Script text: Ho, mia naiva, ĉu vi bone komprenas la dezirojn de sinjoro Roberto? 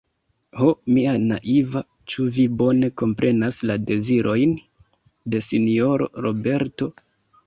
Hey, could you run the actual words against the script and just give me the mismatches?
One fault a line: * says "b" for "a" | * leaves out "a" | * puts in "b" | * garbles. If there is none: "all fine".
all fine